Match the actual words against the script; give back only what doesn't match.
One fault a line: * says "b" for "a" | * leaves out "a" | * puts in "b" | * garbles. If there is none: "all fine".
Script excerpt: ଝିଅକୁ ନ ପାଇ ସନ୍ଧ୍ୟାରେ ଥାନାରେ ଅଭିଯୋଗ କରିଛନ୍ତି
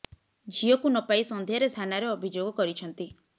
all fine